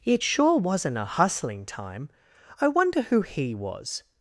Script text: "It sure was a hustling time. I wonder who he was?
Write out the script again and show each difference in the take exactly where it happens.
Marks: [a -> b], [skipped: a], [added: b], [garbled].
"It sure [was -> wasn't] a hustling time. I wonder who he was?